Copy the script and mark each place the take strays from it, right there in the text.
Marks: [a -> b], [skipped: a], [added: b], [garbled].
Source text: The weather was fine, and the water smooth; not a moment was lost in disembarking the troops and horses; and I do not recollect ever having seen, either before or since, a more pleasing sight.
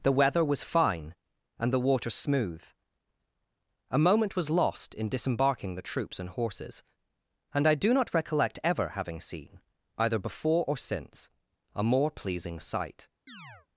The weather was fine, and the water smooth; [skipped: not] a moment was lost in disembarking the troops and horses; and I do not recollect ever having seen, either before or since, a more pleasing sight.